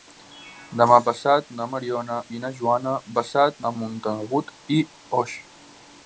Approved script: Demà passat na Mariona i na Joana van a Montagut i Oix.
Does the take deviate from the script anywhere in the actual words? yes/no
yes